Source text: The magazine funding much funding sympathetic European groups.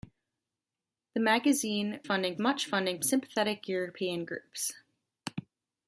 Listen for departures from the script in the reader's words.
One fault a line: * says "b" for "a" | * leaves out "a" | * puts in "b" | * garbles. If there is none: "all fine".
all fine